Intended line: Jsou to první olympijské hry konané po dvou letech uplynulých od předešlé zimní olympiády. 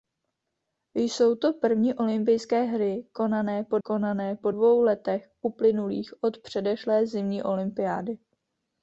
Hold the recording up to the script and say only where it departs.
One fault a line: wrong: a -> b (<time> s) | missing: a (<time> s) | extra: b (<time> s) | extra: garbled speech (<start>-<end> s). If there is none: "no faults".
extra: konané po (3.8 s)